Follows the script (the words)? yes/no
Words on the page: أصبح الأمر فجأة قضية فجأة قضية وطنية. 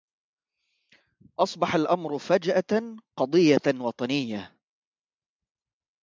no